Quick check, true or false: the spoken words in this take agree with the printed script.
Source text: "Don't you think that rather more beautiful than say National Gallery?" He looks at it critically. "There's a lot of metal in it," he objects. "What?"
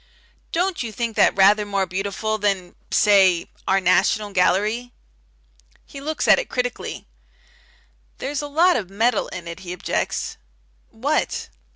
false